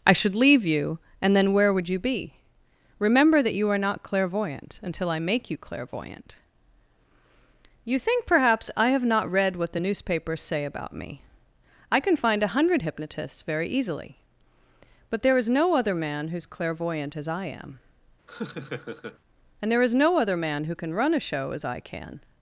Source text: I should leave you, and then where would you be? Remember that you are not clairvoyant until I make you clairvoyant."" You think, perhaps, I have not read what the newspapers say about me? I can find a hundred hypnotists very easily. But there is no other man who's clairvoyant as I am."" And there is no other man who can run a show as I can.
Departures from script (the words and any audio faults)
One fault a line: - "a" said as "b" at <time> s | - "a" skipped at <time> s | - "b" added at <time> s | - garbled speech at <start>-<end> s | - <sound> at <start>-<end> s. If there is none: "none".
- laugh at 18.3-19.2 s